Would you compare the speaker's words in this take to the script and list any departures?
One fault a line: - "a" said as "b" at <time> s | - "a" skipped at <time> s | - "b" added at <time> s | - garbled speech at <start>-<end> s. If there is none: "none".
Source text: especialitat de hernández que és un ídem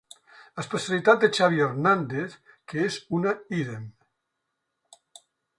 - "xavi" added at 1.4 s
- "un" said as "una" at 3.2 s